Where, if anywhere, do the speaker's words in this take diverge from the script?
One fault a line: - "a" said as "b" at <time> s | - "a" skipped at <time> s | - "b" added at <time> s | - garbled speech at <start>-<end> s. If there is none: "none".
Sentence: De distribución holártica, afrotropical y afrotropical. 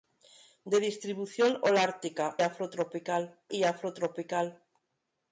none